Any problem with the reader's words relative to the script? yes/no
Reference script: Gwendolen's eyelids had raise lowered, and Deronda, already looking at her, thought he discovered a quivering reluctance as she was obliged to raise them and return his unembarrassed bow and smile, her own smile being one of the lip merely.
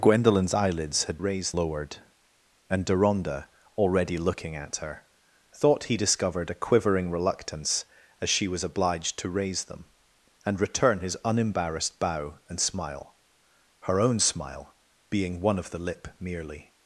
no